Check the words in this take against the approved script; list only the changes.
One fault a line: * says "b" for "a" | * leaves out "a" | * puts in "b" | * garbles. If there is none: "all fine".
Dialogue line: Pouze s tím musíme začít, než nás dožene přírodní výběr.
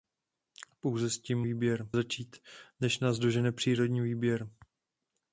* says "výběr" for "musíme"